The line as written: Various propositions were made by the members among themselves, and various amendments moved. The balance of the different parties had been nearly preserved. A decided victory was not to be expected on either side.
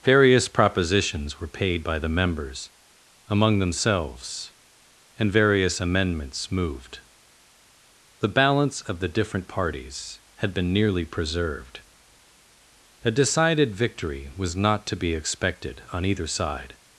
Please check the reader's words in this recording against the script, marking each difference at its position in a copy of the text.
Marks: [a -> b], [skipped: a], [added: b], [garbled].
Various propositions were [made -> paid] by the members among themselves, and various amendments moved. The balance of the different parties had been nearly preserved. A decided victory was not to be expected on either side.